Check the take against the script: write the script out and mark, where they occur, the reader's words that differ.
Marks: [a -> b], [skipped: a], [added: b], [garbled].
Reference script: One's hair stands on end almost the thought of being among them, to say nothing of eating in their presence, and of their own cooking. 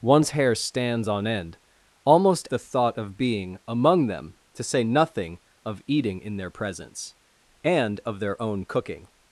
One's hair stands on end almost the thought of being among them, to say nothing of eating in their presence, and of their own cooking.